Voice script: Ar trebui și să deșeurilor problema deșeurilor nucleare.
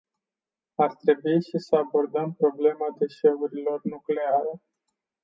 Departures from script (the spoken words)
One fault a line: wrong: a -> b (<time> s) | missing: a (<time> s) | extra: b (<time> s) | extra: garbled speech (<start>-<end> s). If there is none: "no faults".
wrong: deșeurilor -> abordăm (1.8 s)